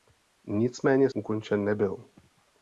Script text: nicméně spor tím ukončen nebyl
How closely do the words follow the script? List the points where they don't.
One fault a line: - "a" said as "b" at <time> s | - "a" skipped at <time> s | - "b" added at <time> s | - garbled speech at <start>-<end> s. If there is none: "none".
- "spor tím" skipped at 1.1 s